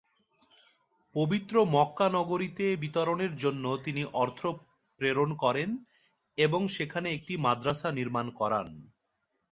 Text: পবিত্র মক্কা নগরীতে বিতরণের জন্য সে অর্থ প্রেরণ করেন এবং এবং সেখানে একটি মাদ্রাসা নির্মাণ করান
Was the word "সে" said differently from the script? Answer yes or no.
yes